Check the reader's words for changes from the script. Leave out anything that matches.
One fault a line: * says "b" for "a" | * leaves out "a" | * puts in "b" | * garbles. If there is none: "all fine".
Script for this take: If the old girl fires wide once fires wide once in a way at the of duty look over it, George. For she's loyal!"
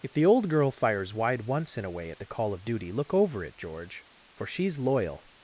* leaves out "fires wide once"
* puts in "call"